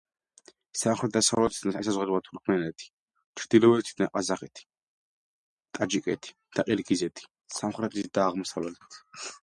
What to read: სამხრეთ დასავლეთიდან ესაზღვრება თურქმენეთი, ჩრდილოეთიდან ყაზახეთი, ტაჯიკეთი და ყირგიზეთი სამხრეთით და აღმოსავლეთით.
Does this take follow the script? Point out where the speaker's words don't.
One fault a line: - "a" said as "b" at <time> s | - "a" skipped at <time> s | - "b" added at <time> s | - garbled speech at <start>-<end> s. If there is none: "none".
none